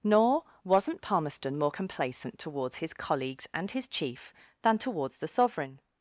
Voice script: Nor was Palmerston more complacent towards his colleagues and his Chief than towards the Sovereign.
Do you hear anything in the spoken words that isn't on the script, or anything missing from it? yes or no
yes